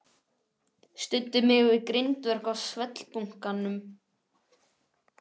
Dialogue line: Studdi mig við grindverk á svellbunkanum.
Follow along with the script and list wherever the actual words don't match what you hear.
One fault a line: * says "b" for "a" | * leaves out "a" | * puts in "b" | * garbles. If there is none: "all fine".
all fine